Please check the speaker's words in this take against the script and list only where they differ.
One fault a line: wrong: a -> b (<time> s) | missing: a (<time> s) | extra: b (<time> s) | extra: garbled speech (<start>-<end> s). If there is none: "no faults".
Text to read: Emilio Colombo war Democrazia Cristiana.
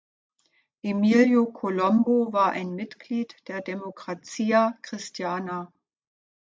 extra: ein Mitglied der (2.5 s)